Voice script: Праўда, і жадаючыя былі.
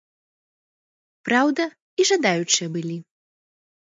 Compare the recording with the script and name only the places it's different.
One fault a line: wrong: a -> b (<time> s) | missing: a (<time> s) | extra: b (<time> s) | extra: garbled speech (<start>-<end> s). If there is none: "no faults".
no faults